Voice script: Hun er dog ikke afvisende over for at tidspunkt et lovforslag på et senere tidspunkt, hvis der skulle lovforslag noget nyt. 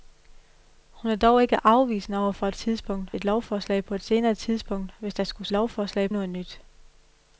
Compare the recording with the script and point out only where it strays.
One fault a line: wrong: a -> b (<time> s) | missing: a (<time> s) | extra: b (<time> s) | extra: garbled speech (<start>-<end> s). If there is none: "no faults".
no faults